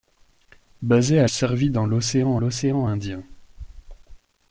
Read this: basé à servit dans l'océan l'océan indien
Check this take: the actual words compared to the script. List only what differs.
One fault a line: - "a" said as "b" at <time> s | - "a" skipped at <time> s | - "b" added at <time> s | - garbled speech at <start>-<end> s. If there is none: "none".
none